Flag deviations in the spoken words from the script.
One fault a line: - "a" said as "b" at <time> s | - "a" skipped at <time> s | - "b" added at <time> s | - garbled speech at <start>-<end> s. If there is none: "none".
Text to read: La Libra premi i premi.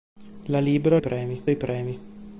none